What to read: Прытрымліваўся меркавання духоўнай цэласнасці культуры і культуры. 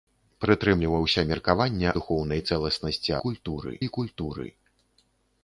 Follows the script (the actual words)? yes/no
yes